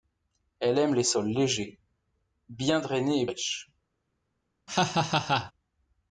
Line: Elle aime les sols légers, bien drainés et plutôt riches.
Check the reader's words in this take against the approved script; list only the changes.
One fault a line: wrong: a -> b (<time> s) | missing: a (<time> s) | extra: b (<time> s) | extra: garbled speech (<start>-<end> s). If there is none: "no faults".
missing: plutôt (3.3 s)